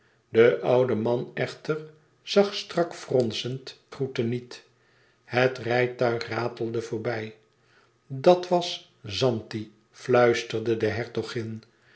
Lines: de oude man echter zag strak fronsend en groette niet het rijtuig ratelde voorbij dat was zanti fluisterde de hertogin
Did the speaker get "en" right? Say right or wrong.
wrong